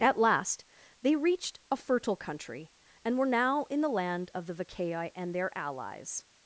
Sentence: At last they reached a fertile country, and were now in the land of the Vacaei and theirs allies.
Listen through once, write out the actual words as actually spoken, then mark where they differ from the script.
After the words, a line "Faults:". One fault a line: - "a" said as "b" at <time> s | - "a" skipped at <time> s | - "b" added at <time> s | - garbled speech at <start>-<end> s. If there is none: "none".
At last they reached a fertile country, and were now in the land of the Vacaei and their allies.
Faults:
- "theirs" said as "their" at 5.3 s